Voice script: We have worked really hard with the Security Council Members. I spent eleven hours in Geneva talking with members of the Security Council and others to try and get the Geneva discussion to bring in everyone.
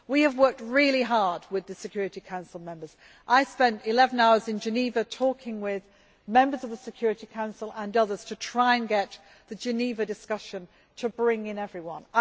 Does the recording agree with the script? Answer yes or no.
yes